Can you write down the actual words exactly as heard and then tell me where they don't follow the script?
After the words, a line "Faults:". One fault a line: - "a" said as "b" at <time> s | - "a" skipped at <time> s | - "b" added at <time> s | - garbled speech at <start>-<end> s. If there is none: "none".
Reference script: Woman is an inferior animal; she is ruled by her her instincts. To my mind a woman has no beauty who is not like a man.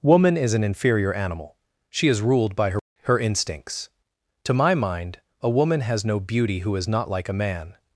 Woman is an inferior animal; she is ruled by her her instincts. To my mind a woman has no beauty who is not like a man.
Faults:
none